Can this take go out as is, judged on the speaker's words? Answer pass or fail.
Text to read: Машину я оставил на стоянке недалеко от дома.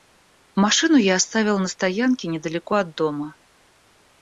pass